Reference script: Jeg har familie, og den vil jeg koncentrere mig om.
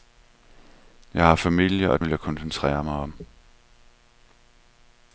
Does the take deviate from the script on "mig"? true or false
false